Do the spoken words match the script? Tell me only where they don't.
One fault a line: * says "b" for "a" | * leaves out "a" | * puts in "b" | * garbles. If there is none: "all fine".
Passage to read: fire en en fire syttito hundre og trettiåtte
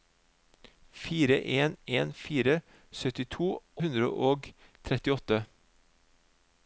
all fine